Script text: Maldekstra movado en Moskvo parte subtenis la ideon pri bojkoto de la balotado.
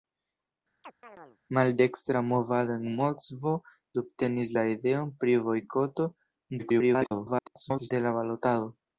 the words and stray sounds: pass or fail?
fail